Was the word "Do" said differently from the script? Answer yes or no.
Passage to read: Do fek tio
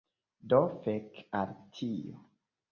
no